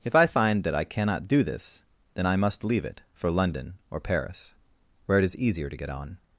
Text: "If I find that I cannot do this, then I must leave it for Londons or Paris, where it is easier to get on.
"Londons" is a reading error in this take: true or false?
true